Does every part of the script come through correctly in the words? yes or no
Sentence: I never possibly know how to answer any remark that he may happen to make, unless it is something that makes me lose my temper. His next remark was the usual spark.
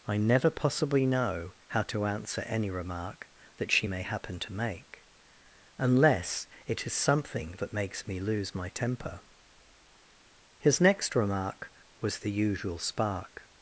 no